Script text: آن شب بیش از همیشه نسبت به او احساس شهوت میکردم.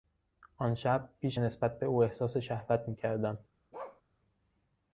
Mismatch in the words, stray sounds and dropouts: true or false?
true